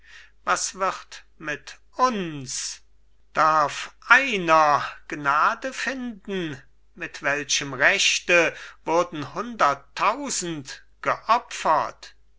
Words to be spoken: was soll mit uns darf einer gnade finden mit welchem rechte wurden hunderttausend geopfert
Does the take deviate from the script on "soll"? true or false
true